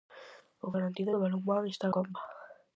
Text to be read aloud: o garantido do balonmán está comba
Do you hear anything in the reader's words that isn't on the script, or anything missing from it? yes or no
no